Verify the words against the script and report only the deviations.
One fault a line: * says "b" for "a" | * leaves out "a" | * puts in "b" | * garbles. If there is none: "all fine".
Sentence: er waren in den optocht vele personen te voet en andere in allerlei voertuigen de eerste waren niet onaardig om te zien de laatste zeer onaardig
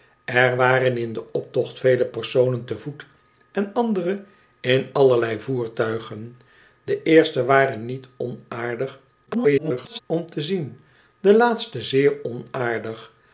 * garbles